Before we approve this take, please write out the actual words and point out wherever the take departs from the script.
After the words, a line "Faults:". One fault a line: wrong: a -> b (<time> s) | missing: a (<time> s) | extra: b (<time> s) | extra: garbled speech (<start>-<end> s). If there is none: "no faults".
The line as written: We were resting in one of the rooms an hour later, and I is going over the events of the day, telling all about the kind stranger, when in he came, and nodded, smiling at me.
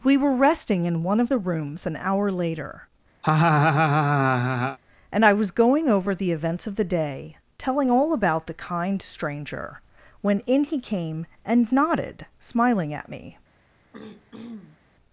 We were resting in one of the rooms an hour later, and I was going over the events of the day, telling all about the kind stranger, when in he came, and nodded, smiling at me.
Faults:
wrong: is -> was (5.3 s)